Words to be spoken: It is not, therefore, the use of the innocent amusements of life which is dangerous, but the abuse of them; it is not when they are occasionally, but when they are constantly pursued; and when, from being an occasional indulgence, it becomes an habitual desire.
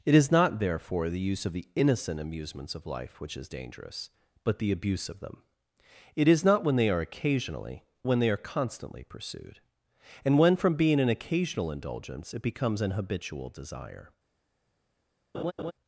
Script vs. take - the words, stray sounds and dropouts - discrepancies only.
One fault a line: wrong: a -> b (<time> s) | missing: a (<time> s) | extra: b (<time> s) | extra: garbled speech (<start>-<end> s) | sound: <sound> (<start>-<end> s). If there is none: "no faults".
missing: but (7.8 s)
sound: laugh (15.3-15.7 s)